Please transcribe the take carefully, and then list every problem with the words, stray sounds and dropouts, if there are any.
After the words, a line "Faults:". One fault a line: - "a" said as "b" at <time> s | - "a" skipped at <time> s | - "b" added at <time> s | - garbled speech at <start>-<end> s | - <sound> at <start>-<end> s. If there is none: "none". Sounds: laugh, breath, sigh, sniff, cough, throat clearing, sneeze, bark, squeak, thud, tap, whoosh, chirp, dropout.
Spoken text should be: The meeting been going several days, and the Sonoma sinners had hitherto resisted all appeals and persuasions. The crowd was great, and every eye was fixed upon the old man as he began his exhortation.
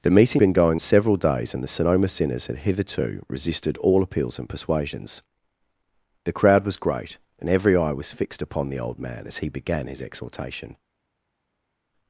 The meeting been going several days, and the Sonoma sinners had hitherto resisted all appeals and persuasions. The crowd was great, and every eye was fixed upon the old man as he began his exhortation.
Faults:
none